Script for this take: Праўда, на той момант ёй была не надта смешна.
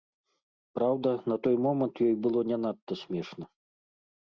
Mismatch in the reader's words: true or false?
true